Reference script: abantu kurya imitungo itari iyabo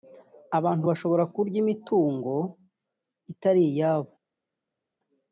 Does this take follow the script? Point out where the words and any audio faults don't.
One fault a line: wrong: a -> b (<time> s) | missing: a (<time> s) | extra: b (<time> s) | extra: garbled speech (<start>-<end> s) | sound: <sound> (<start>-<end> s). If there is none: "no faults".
extra: bashobora (0.9 s)